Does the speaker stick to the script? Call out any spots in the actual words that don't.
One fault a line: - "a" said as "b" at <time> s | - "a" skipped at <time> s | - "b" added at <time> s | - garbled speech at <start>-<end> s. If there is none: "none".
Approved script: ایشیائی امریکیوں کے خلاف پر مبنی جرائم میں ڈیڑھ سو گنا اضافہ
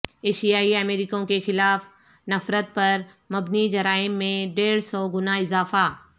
- "نفرت" added at 2.3 s